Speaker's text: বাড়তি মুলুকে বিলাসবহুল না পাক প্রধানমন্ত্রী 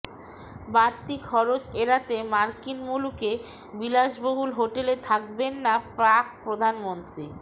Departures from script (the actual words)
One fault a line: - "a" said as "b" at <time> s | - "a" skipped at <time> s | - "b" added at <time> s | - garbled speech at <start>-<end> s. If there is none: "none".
- "খরচ এড়াতে মার্কিন" added at 1.3 s
- "হোটেলে থাকবেন" added at 4.6 s